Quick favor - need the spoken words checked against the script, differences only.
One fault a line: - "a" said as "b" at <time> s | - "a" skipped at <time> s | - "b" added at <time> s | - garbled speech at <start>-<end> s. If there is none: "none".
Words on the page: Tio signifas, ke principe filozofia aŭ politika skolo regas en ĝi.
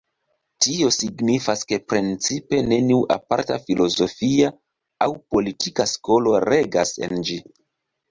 - "neniu aparta" added at 2.7 s